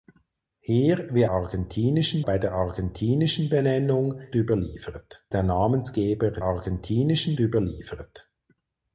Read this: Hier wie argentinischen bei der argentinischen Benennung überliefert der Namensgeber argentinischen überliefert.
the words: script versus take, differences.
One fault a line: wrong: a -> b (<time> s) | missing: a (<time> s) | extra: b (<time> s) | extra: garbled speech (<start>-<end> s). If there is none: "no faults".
no faults